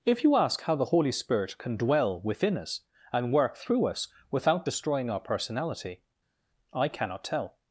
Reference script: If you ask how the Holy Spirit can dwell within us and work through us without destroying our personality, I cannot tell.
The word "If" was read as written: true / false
true